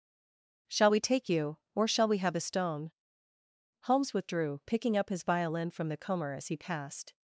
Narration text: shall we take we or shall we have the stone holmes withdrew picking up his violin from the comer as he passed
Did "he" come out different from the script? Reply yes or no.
no